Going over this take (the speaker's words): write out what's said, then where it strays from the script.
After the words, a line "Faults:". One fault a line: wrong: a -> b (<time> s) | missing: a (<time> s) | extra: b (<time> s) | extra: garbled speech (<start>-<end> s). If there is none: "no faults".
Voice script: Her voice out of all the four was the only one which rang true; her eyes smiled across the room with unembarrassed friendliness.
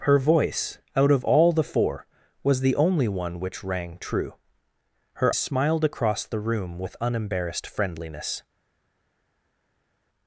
Her voice out of all the four was the only one which rang true; her smiled across the room with unembarrassed friendliness.
Faults:
missing: eyes (5.3 s)